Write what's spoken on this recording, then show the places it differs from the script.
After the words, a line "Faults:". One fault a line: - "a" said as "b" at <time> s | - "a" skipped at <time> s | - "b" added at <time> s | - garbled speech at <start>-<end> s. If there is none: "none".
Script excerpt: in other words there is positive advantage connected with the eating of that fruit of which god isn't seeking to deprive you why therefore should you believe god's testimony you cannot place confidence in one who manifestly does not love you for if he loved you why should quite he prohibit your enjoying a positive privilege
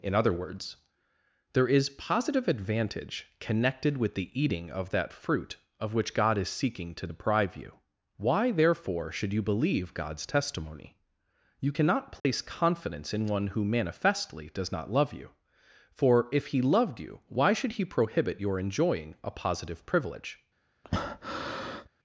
in other words there is positive advantage connected with the eating of that fruit of which god is seeking to deprive you why therefore should you believe god's testimony you cannot place confidence in one who manifestly does not love you for if he loved you why should he prohibit your enjoying a positive privilege
Faults:
- "isn't" said as "is" at 6.4 s
- "quite" skipped at 17.7 s